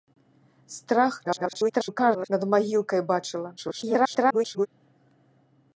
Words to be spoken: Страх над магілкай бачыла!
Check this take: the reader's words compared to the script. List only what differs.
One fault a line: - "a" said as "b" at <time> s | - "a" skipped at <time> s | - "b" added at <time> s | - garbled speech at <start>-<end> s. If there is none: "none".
- garbled speech at 1.2-2.3 s
- garbled speech at 3.6-4.7 s